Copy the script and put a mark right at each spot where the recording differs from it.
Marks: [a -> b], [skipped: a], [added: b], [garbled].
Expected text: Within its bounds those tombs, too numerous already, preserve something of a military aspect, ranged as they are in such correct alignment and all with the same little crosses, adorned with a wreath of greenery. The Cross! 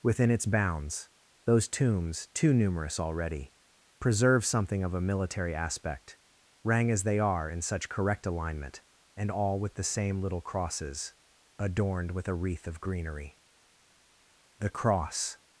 Within its bounds those tombs, too numerous already, preserve something of a military aspect, [ranged -> rang] as they are in such correct alignment and all with the same little crosses, adorned with a wreath of greenery. The Cross!